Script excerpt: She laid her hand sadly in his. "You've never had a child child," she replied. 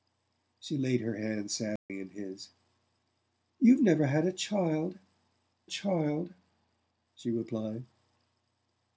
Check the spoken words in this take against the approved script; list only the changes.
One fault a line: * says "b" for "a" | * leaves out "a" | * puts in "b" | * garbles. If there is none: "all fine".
all fine